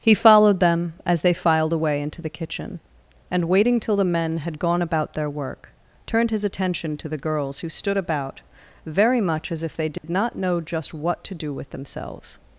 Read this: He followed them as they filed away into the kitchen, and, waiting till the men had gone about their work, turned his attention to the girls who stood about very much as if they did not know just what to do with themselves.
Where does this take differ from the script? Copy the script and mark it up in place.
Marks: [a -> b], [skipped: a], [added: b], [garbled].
He followed them as they filed away into the kitchen, and, waiting till the men had gone about their work, turned his attention to the girls who stood about very much as if they did not know just what to do with themselves.